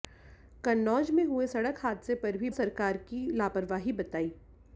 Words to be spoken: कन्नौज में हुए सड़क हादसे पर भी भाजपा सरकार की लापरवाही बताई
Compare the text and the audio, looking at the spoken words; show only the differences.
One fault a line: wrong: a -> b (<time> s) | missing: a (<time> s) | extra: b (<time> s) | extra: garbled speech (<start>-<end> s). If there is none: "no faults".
missing: भाजपा (2.5 s)